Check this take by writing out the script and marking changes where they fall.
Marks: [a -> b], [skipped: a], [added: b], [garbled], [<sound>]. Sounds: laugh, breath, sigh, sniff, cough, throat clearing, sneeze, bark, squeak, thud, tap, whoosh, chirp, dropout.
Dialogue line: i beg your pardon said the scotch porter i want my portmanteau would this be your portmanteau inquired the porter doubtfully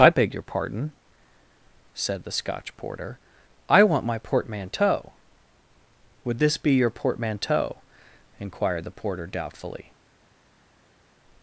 i beg your pardon said the scotch porter i want my portmanteau would this be your portmanteau inquired the porter doubtfully